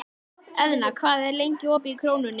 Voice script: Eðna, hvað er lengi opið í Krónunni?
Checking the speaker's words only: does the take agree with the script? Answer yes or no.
yes